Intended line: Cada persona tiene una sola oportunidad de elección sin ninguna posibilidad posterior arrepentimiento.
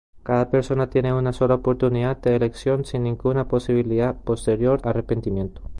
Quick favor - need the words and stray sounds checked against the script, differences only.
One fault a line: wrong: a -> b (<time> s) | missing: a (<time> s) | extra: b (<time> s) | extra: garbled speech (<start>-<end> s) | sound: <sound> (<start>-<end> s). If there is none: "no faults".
no faults